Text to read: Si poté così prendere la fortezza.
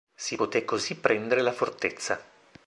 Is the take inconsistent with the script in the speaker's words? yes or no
no